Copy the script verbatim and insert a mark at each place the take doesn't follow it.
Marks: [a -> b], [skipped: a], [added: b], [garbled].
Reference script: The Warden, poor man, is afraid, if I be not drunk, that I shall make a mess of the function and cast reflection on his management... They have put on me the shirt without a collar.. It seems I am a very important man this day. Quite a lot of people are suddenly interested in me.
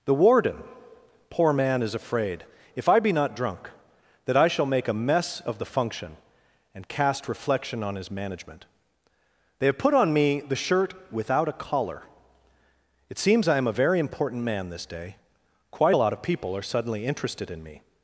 The Warden, poor man, is afraid, if I be not drunk, that I shall make a mess of the function and cast reflection on his management... They have put on me the shirt without a collar.. It seems I am a very important man this day. Quite a lot of people are suddenly interested in me.